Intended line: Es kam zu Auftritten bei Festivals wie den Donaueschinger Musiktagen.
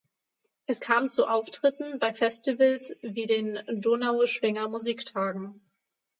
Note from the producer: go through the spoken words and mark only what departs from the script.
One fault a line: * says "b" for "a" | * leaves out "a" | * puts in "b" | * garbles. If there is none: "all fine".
all fine